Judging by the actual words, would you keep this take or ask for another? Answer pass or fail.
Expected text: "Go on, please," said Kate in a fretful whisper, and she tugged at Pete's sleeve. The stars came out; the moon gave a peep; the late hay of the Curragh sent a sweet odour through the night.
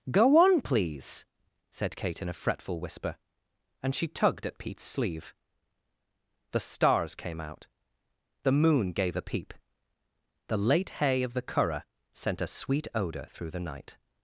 pass